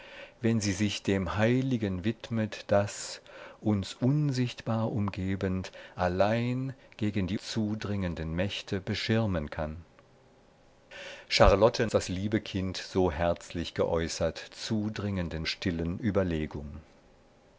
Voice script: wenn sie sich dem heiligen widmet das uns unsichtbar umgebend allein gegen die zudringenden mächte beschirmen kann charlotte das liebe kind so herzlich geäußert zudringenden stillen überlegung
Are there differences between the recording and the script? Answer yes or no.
no